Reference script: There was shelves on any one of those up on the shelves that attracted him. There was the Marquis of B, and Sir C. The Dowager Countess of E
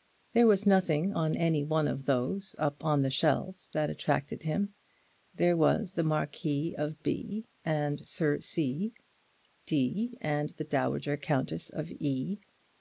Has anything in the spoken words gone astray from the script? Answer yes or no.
yes